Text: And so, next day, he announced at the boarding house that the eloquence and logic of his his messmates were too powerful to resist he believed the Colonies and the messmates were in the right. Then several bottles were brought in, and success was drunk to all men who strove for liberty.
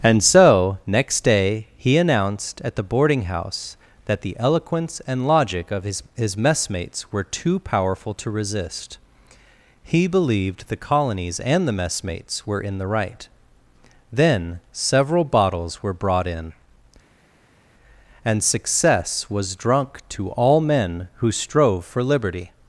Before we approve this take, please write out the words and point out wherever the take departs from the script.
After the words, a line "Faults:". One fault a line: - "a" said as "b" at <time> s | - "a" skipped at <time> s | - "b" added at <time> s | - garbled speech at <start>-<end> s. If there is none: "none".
And so, next day, he announced at the boarding house that the eloquence and logic of his his messmates were too powerful to resist he believed the Colonies and the messmates were in the right. Then several bottles were brought in, and success was drunk to all men who strove for liberty.
Faults:
none